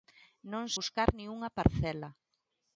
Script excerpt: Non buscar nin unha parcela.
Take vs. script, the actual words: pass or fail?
pass